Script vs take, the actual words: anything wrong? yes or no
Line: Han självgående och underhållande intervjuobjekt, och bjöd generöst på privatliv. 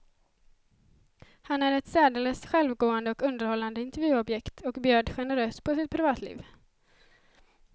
yes